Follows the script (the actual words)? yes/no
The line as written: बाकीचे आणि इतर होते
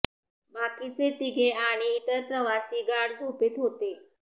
no